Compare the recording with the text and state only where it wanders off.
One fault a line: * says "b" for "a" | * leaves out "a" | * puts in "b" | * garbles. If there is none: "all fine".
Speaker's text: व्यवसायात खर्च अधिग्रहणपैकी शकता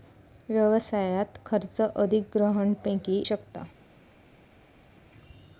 all fine